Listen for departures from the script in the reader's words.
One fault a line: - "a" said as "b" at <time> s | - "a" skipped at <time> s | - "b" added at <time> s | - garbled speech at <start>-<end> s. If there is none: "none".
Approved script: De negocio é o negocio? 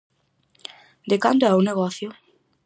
- "negocio" said as "cando" at 1.2 s